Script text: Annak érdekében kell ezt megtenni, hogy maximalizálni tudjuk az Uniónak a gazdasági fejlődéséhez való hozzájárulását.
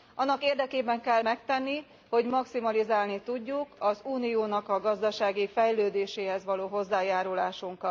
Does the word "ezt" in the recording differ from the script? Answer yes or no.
yes